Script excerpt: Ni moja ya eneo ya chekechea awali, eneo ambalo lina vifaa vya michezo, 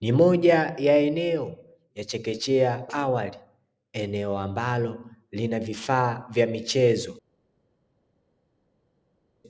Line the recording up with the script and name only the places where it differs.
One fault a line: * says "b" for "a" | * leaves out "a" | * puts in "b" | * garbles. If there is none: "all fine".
all fine